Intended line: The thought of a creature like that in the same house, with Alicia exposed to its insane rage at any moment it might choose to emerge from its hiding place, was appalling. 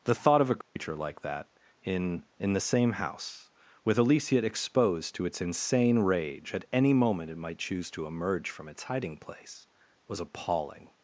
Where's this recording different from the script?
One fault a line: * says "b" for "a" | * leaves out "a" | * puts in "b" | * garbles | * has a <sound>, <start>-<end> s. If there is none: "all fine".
* has a dropout, 0.6-0.8 s
* puts in "in"